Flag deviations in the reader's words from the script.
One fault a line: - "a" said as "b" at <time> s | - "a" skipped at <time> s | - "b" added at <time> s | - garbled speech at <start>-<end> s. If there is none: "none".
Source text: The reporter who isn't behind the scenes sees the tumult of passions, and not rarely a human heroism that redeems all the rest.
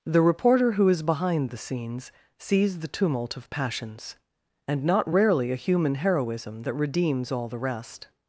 - "isn't" said as "is" at 0.9 s